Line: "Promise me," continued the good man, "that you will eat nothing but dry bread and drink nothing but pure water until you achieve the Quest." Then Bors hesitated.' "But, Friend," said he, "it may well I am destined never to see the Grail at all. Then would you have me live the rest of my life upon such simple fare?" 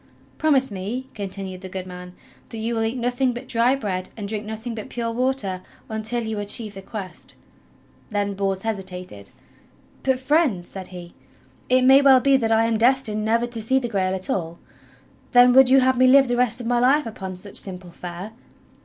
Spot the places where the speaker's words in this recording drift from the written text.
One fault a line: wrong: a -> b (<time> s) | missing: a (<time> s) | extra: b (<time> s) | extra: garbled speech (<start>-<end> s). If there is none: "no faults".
extra: be that (12.2 s)